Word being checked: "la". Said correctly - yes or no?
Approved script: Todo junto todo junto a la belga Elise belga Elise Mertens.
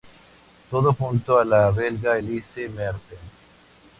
yes